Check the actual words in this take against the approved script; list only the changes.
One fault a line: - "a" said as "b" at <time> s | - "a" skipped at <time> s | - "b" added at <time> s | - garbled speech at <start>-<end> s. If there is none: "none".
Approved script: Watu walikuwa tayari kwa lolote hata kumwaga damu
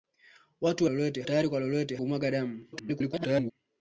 - "walikuwa" said as "lolote" at 0.8 s
- "hata" skipped at 1.9 s
- garbled speech at 2.7-3.5 s